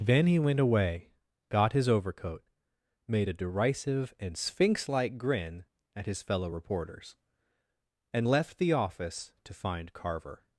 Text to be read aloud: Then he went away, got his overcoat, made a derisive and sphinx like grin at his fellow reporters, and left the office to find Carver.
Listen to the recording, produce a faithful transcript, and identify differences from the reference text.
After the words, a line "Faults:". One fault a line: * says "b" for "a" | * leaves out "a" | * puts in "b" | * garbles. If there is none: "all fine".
Then he went away, got his overcoat, made a derisive and sphinx like grin at his fellow reporters, and left the office to find Carver.
Faults:
all fine